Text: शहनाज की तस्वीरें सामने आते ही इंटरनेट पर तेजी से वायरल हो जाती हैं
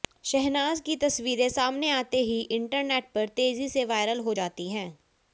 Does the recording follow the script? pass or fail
pass